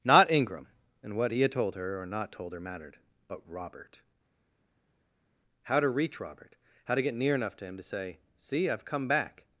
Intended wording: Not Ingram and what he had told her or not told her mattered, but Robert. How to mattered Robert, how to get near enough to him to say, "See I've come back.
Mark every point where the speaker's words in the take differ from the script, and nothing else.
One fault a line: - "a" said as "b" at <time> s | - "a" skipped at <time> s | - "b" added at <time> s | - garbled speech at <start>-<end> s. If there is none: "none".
- "mattered" said as "reach" at 5.9 s